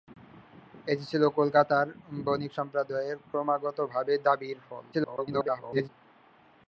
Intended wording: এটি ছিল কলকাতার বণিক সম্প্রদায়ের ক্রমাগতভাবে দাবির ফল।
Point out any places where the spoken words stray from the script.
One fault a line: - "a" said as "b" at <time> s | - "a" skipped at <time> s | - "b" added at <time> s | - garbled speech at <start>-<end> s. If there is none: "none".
- garbled speech at 4.9-5.9 s